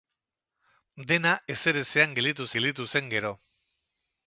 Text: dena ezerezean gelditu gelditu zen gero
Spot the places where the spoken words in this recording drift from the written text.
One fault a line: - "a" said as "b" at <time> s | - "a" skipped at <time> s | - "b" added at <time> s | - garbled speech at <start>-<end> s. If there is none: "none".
none